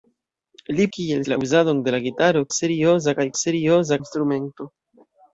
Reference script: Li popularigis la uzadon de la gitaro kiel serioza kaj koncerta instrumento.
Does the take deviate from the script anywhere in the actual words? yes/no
yes